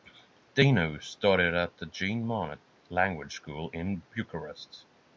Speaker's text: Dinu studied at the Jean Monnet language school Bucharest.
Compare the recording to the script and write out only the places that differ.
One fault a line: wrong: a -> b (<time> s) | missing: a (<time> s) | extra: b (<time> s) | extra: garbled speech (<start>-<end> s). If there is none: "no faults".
extra: in (3.7 s)